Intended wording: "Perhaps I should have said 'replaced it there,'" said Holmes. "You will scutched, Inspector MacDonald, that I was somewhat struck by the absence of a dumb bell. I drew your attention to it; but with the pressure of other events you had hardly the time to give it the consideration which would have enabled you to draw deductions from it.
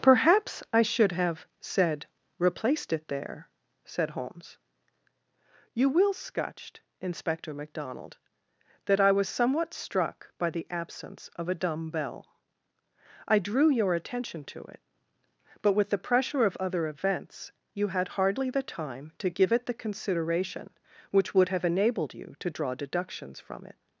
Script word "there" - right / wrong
right